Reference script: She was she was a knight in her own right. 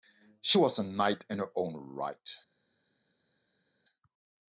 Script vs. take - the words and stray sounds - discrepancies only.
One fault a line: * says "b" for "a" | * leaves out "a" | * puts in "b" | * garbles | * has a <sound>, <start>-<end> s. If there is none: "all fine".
* leaves out "she was"